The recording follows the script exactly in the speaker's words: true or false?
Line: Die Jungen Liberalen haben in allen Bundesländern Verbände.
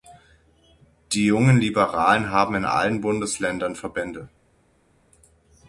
true